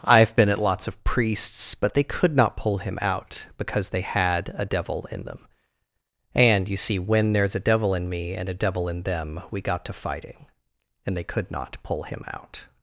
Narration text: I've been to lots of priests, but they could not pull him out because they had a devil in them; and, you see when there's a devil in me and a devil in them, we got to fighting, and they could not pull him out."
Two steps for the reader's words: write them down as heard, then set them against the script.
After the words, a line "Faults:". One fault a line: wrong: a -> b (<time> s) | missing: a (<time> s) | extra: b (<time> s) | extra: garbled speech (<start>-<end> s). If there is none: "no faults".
I've been at lots of priests, but they could not pull him out because they had a devil in them; and, you see when there's a devil in me and a devil in them, we got to fighting, and they could not pull him out."
Faults:
wrong: to -> at (0.5 s)